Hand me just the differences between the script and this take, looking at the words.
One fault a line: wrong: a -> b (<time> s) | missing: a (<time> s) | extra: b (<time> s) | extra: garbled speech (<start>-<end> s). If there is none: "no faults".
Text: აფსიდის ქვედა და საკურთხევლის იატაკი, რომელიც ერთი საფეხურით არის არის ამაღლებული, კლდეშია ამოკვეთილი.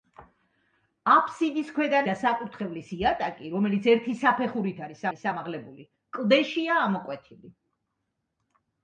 no faults